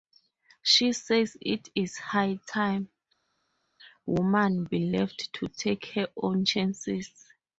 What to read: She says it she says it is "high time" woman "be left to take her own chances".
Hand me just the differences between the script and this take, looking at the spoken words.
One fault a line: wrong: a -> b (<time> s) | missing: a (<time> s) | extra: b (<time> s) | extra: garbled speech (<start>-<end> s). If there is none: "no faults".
missing: she says it (1.7 s)